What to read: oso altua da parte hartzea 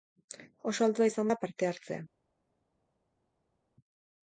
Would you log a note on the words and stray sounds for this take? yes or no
yes